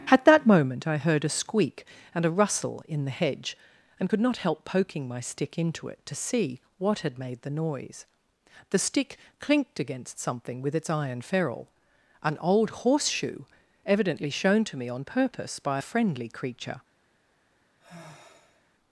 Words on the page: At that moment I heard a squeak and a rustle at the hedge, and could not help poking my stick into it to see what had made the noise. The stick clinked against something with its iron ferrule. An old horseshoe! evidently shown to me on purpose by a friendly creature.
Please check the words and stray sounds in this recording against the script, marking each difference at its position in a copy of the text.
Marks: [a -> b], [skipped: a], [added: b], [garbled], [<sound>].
At that moment I heard a squeak and a rustle [at -> in] the hedge, and could not help poking my stick into it to see what had made the noise. The stick clinked against something with its iron ferrule. An old horseshoe! evidently shown to me on purpose by a friendly creature. [sigh]